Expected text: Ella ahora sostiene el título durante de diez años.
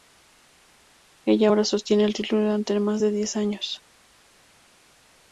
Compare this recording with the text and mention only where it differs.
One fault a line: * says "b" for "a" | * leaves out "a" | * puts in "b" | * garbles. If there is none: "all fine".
* puts in "más"